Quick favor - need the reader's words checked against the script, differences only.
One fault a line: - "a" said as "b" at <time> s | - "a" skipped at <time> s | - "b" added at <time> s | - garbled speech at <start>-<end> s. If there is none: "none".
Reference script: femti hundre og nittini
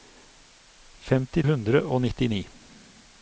none